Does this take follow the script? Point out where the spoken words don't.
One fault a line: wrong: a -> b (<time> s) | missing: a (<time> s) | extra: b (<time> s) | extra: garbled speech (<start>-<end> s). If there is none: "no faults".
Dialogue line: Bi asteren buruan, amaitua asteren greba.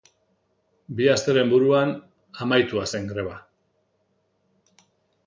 wrong: asteren -> zen (2.9 s)